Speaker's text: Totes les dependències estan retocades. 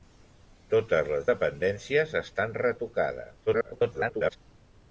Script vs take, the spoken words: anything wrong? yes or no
yes